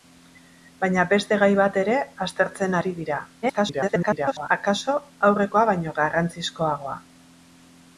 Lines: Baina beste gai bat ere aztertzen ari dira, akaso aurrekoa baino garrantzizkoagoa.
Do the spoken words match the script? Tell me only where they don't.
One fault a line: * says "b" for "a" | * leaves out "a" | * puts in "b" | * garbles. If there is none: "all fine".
* garbles